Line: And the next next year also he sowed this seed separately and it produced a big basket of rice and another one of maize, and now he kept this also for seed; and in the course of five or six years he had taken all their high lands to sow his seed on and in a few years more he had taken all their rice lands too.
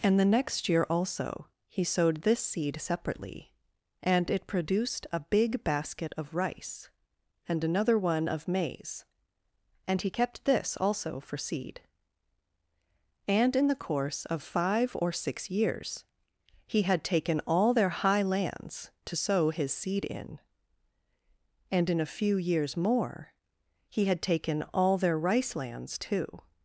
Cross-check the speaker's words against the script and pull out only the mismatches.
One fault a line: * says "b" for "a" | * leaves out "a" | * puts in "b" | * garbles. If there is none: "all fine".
* leaves out "next"
* leaves out "now"
* says "in" for "on"